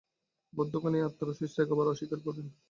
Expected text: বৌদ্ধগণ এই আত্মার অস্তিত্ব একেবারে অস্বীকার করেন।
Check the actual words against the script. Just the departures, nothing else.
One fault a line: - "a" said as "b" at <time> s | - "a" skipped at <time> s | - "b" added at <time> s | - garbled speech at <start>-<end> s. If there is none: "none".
none